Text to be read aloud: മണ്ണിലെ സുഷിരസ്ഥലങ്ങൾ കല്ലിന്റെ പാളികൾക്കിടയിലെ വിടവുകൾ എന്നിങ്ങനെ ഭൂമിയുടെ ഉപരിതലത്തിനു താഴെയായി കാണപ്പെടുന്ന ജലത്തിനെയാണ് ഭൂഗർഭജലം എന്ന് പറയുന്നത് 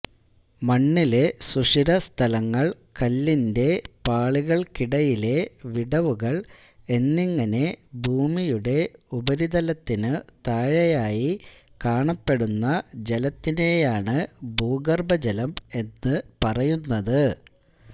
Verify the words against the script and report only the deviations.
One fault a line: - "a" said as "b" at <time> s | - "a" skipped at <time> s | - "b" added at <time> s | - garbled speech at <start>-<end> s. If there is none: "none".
none